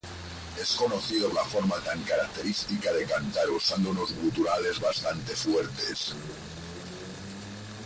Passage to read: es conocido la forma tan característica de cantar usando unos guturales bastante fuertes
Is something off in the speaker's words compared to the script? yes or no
no